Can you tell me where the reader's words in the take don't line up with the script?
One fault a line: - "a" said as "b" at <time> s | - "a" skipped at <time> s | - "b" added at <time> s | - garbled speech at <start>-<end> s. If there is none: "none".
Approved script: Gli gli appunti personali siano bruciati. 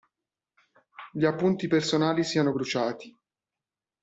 - "gli" skipped at 1.2 s